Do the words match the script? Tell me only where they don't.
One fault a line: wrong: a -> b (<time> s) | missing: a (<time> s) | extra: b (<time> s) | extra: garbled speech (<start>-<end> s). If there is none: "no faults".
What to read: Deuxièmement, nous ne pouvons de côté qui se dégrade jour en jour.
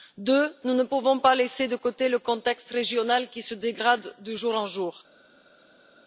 extra: pas laisser (1.2 s)
extra: le contexte régional (2.1 s)
extra: de (4.2 s)